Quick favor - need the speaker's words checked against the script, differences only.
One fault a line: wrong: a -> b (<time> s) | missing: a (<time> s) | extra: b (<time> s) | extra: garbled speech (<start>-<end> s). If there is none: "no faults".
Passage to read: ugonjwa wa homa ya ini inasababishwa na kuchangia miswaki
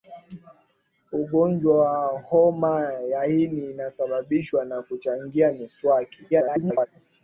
extra: garbled speech (6.3-6.9 s)